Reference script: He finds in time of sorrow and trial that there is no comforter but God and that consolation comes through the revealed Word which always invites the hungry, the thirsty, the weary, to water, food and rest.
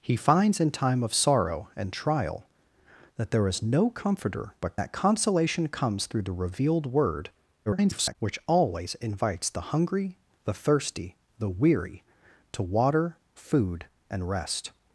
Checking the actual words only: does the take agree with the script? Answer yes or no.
no